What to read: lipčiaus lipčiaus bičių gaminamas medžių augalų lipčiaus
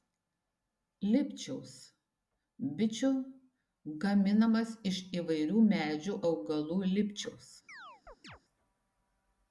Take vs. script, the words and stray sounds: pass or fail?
fail